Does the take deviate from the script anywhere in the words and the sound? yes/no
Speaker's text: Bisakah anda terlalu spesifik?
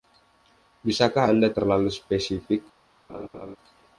yes